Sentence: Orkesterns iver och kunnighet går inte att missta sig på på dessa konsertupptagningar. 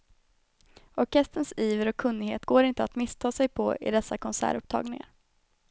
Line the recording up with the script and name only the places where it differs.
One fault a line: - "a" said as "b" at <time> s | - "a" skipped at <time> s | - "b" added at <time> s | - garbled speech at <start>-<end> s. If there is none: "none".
- "på" said as "i" at 3.8 s